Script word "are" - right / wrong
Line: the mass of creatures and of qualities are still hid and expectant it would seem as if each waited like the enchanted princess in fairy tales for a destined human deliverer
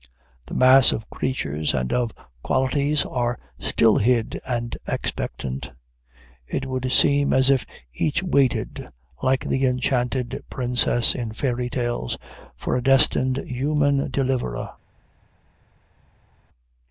right